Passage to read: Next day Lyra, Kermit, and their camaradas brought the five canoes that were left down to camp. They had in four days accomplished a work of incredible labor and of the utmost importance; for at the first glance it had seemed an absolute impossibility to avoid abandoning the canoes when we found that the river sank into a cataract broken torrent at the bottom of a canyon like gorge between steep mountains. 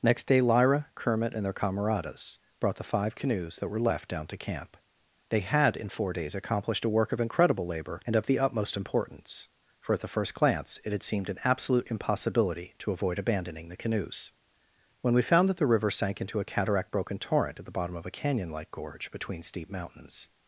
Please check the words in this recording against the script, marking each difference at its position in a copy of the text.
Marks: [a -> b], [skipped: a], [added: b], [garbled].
Next day Lyra, Kermit, and their camaradas brought the five canoes that were left down to camp. They had in four days accomplished a work of incredible labor and of the utmost importance; for at the first glance it had seemed an absolute impossibility to avoid abandoning the canoes when we found that the river sank into a cataract broken torrent at the bottom of a canyon like gorge between steep mountains.